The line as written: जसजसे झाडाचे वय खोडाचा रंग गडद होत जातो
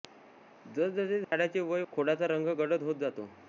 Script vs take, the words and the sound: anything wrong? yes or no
yes